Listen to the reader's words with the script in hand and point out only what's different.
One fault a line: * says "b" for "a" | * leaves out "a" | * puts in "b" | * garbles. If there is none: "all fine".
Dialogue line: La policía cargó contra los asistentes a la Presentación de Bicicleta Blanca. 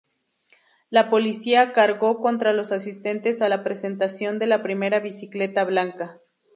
* puts in "la Primera"